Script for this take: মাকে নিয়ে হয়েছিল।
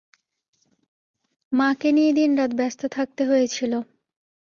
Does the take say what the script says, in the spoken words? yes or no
no